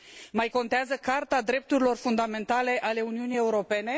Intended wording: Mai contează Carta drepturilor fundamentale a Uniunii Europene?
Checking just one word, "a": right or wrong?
right